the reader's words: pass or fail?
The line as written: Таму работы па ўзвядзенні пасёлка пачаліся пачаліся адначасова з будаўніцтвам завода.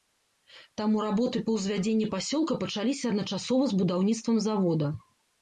fail